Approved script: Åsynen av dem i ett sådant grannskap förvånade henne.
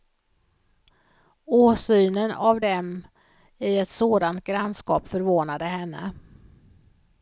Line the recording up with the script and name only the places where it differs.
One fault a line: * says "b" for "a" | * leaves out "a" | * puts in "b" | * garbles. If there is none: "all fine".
all fine